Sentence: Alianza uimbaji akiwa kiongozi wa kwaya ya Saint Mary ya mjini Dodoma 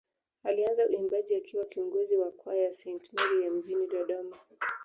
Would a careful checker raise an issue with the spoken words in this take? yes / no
no